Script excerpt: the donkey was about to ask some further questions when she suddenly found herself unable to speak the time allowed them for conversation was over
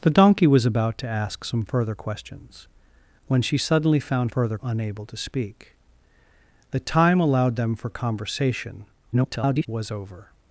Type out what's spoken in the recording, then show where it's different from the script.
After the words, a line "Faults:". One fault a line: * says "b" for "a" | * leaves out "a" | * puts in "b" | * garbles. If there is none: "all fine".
the donkey was about to ask some further questions when she suddenly found further unable to speak the time allowed them for conversation [garbled] was over
Faults:
* says "further" for "herself"
* garbles